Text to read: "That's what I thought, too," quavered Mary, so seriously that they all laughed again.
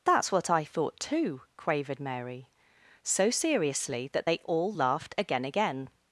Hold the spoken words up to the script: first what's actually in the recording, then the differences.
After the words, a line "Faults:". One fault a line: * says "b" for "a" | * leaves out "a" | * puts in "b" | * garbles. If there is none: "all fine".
"That's what I thought, too," quavered Mary, so seriously that they all laughed again again.
Faults:
* puts in "again"